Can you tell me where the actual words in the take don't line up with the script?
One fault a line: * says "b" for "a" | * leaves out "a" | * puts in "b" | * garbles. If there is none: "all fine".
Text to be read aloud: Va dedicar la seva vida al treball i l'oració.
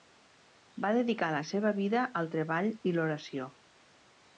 all fine